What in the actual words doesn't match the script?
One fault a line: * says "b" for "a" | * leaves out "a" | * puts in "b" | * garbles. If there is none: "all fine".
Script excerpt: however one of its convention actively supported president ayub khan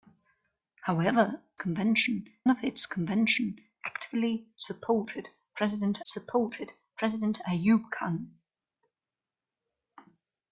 * says "convention" for "one"
* puts in "supported president"